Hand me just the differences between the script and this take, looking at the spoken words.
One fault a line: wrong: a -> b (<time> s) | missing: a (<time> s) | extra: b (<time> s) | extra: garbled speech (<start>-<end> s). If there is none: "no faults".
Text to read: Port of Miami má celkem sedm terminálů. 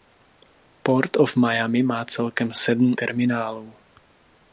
no faults